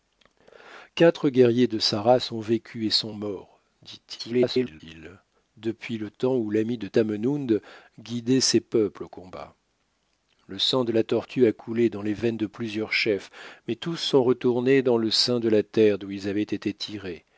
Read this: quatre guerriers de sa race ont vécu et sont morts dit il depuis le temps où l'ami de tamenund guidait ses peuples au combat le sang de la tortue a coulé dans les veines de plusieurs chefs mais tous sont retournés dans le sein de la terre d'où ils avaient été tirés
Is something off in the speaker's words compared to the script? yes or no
yes